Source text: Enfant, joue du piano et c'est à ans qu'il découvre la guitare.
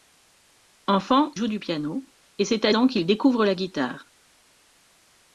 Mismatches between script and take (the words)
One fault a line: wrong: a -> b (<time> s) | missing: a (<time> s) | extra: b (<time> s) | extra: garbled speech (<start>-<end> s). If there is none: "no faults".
no faults